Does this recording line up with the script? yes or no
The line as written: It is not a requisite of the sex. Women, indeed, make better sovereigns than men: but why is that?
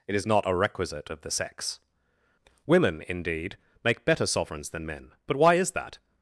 yes